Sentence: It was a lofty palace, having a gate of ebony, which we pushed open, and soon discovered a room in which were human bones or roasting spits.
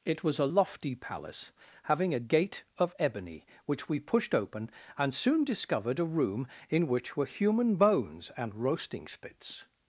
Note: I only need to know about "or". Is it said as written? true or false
false